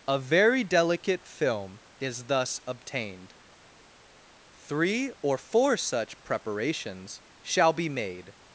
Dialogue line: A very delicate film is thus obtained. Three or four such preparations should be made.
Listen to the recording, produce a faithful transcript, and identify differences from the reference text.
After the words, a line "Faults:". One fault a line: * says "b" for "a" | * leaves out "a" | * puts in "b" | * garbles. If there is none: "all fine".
A very delicate film is thus obtained. Three or four such preparations shall be made.
Faults:
* says "shall" for "should"